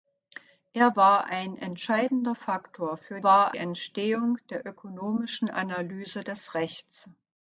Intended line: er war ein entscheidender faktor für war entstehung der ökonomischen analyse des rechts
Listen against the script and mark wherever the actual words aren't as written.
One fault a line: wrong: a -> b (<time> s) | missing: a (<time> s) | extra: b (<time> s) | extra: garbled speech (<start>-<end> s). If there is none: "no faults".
no faults